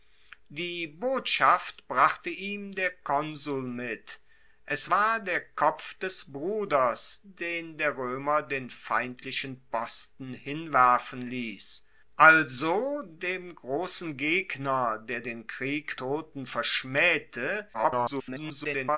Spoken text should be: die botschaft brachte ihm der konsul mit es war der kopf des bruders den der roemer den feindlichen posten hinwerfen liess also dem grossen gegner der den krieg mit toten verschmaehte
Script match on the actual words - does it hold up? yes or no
no